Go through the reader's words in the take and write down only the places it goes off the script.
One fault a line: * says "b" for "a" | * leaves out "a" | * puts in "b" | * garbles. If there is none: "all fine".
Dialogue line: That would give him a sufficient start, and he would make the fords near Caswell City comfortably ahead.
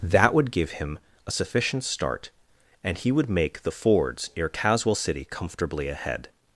all fine